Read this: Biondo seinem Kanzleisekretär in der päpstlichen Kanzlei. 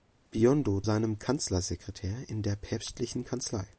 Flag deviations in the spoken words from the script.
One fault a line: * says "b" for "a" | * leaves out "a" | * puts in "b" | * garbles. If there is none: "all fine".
all fine